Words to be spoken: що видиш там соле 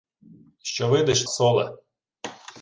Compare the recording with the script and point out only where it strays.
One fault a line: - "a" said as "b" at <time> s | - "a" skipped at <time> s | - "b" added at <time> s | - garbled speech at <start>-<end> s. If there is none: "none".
- "там" skipped at 1.2 s